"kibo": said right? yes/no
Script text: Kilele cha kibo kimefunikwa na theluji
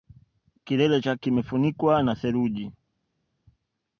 no